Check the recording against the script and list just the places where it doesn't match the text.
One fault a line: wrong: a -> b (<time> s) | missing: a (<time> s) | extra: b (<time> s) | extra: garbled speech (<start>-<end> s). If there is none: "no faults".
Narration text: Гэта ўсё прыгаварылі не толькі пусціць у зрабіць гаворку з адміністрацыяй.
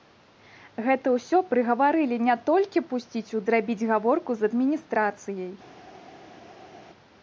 no faults